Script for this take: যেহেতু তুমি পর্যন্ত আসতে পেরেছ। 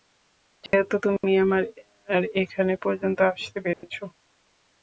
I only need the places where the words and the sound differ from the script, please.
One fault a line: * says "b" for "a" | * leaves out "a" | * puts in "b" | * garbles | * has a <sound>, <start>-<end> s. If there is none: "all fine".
* has a dropout, 0.7-0.7 s
* puts in "আমার এখানে"
* has a dropout, 3.7-3.8 s